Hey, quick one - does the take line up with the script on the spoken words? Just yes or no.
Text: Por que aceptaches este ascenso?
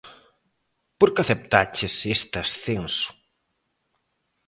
yes